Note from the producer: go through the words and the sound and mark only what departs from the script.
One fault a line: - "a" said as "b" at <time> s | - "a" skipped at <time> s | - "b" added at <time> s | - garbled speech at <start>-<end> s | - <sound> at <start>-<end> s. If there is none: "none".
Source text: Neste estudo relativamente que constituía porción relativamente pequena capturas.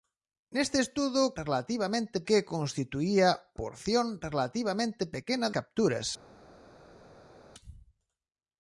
none